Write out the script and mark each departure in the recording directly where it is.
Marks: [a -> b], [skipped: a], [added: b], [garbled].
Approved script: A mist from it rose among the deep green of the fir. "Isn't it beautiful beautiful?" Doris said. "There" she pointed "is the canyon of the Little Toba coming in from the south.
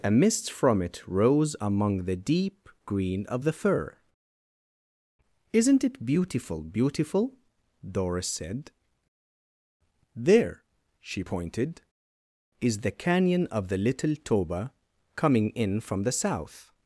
A mist from it rose among the deep green of the fir. "Isn't it beautiful beautiful?" Doris said. "There" she pointed "is the canyon of the Little Toba coming in from the south.